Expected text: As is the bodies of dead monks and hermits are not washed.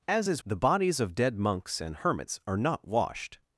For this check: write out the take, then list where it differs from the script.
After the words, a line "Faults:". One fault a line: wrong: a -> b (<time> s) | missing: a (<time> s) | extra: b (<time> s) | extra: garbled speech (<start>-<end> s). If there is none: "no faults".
As is the bodies of dead monks and hermits are not washed.
Faults:
no faults